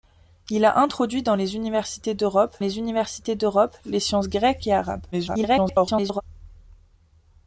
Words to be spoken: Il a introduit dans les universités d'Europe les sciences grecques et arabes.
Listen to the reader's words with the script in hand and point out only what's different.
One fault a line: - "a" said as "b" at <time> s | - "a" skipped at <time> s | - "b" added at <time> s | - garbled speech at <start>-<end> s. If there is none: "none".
- "universités d'Europe les" added at 2.8 s
- garbled speech at 5.1-6.2 s